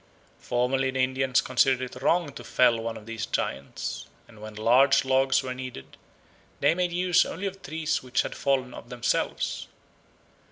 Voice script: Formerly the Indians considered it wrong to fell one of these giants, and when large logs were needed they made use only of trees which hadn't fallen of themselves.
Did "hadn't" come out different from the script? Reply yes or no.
yes